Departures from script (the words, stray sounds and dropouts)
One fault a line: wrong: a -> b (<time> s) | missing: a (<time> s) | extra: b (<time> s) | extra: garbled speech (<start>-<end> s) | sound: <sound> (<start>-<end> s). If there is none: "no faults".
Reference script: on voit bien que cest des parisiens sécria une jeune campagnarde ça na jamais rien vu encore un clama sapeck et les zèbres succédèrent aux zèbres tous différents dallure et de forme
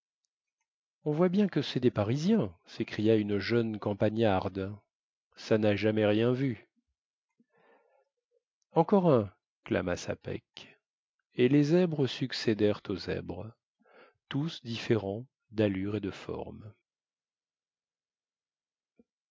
no faults